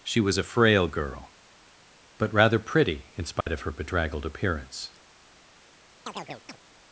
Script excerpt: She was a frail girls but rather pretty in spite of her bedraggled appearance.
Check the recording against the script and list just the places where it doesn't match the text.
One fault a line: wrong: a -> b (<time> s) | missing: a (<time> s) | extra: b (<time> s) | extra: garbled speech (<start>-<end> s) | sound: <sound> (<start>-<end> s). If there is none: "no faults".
wrong: girls -> girl (0.9 s)
sound: dropout (3.4-3.5 s)
sound: chirp (6.1-6.6 s)